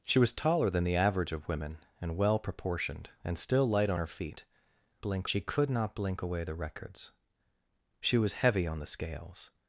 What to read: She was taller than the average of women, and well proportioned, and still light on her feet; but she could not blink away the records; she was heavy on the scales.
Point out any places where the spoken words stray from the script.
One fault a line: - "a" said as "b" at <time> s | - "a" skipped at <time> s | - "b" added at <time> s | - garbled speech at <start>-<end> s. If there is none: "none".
- "but" said as "blink" at 5.0 s